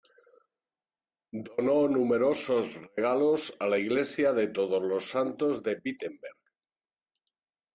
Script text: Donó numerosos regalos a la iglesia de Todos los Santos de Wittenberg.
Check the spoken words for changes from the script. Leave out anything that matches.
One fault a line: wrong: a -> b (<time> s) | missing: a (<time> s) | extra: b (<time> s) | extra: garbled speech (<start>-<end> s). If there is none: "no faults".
no faults